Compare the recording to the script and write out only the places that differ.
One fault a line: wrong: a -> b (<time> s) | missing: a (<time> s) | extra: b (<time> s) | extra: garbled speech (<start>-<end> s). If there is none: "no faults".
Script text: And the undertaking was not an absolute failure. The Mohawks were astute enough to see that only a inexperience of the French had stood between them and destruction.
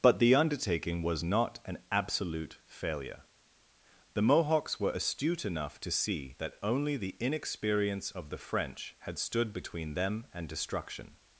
wrong: And -> But (0.0 s)
wrong: a -> the (7.0 s)